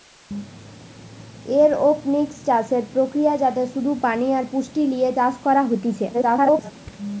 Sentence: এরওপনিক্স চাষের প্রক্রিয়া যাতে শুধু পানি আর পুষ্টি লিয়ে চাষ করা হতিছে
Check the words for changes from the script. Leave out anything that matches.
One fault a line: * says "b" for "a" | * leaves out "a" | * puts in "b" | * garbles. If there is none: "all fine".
* garbles